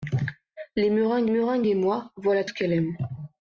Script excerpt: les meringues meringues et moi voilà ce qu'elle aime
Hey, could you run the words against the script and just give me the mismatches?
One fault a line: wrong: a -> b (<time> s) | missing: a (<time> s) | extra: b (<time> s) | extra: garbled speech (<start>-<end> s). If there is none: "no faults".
no faults